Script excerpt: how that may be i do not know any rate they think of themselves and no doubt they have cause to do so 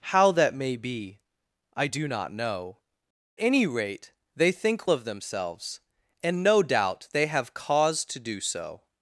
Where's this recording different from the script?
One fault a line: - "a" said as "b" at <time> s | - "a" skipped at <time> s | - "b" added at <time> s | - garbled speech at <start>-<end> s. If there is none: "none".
none